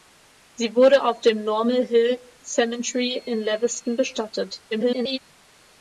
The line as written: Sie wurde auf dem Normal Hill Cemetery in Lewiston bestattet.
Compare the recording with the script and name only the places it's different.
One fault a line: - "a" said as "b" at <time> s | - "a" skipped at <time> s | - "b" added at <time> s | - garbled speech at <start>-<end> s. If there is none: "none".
- garbled speech at 4.7-5.2 s